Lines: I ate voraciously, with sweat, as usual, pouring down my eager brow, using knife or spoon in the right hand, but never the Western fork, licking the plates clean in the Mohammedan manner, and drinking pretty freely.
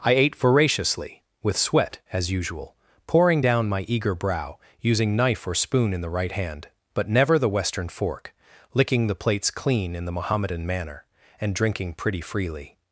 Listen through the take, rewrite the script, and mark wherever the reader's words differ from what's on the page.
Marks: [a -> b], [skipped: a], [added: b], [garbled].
I ate voraciously, with sweat, as usual, pouring down my eager brow, using knife or spoon in the right hand, but never the Western fork, licking the plates clean in the Mohammedan manner, and drinking pretty freely.